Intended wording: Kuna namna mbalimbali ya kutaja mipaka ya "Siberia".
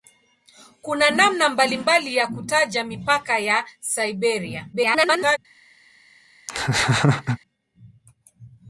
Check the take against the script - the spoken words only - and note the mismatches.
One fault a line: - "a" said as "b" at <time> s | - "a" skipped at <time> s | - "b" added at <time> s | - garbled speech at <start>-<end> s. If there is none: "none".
- garbled speech at 4.7-5.4 s